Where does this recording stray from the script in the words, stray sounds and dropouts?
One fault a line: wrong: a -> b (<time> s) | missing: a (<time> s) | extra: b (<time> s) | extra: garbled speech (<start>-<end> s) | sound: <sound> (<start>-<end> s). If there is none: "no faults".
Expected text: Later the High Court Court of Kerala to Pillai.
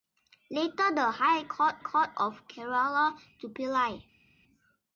no faults